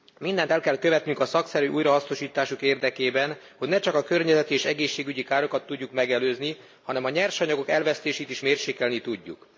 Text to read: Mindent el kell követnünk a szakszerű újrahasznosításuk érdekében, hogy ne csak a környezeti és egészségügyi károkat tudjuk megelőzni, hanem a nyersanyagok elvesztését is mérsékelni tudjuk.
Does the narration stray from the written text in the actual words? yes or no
no